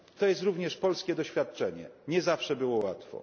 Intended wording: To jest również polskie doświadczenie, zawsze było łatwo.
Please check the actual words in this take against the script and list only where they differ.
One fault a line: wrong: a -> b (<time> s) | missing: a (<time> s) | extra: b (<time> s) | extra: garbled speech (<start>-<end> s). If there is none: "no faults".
extra: nie (2.1 s)